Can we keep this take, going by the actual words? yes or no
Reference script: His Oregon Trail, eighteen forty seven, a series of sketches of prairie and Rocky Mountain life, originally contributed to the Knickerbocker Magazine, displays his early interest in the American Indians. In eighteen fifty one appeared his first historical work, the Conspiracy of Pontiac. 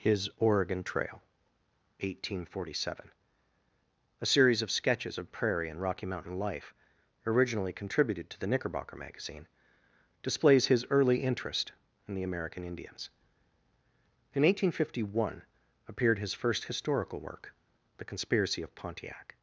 yes